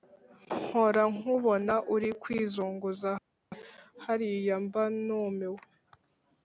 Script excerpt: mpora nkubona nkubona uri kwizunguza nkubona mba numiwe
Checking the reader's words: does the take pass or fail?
fail